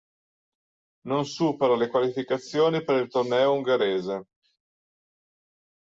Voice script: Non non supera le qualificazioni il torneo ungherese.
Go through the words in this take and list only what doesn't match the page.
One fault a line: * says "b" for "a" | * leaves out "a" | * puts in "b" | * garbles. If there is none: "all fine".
* leaves out "non"
* puts in "per"